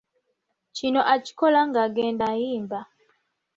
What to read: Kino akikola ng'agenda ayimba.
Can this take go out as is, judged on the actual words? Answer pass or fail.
pass